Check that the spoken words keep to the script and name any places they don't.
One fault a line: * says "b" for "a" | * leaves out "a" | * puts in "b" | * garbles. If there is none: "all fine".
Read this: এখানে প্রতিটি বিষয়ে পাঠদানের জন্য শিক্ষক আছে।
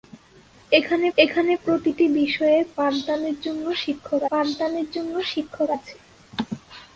* puts in "এখানে"
* puts in "পাঠদানের জন্য শিক্ষক"